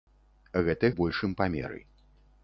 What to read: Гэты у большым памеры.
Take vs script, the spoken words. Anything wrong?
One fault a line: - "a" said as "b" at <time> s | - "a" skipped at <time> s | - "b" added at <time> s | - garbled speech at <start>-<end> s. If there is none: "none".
none